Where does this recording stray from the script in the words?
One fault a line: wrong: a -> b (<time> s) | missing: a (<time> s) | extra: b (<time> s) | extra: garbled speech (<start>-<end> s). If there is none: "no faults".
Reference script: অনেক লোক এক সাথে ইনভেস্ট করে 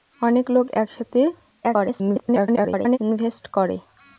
extra: garbled speech (1.6-3.0 s)